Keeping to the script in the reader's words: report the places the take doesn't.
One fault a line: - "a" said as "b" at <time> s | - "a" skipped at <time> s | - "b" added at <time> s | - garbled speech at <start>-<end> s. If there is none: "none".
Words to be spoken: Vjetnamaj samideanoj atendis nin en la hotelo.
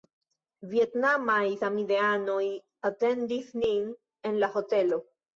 none